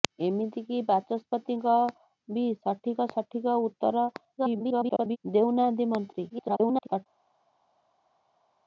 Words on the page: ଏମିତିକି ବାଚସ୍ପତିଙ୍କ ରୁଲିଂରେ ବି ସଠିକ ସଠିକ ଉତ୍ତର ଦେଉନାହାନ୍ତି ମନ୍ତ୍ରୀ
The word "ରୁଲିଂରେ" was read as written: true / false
false